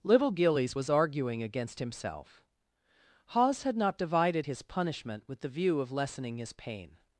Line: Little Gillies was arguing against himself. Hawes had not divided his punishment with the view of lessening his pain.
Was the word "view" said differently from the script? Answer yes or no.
no